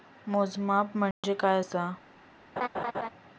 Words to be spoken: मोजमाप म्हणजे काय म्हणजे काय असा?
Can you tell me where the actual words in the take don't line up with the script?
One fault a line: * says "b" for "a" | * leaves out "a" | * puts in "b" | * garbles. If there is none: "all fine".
* leaves out "म्हणजे काय"